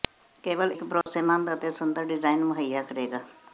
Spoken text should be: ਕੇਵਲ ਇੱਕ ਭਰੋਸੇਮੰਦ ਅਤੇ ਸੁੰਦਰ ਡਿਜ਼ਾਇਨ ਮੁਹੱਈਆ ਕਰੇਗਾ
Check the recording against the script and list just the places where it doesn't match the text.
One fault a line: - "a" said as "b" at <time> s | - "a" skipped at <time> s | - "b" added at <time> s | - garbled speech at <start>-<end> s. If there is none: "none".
none